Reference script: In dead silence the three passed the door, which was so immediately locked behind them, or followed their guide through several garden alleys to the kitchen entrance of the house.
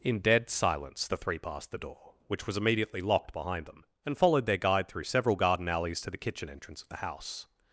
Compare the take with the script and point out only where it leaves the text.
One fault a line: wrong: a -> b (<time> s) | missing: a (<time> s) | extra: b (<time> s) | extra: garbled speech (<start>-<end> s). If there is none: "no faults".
missing: so (2.6 s)
wrong: or -> and (4.1 s)